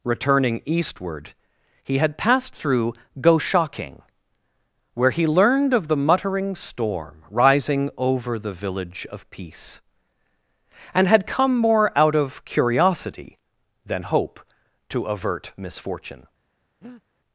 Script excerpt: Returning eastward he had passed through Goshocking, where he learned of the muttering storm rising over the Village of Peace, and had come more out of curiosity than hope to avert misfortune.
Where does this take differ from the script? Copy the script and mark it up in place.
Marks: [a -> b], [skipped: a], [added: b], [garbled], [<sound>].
Returning eastward he had passed through Goshocking, where he learned of the muttering storm rising over the Village of Peace, and had come more out of curiosity than hope to avert misfortune. [breath]